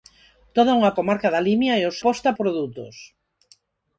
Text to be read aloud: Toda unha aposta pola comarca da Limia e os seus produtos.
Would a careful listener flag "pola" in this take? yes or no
yes